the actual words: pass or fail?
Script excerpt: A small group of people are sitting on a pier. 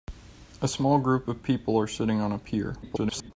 fail